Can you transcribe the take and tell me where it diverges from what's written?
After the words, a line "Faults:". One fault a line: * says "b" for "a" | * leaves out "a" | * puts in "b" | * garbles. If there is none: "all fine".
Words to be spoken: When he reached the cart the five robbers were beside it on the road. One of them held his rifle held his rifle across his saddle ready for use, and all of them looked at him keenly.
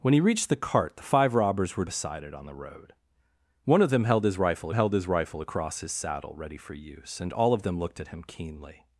When he reached the cart the five robbers were beside it on the road. One of them held his rifle held his rifle across his saddle ready for use, and all of them looked at him keenly.
Faults:
all fine